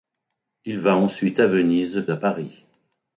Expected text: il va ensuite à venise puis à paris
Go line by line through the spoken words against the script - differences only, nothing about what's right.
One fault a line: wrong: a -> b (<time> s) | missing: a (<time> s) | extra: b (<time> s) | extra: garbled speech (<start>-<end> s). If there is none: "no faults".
missing: puis (2.1 s)